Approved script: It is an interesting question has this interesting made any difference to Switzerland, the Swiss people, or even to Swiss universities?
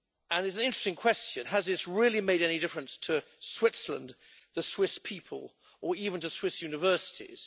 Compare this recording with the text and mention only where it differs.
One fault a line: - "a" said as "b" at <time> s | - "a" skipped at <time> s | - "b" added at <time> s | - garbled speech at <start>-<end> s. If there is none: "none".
- "interesting" said as "really" at 1.9 s